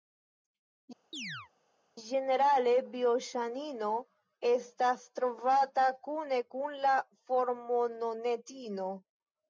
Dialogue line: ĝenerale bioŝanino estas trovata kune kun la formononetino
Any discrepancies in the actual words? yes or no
no